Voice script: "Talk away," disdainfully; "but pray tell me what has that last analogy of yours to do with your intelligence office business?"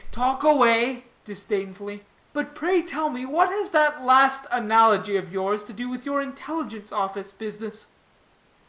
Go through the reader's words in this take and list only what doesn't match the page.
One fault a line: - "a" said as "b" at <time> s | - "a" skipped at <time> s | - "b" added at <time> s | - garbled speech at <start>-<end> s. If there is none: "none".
none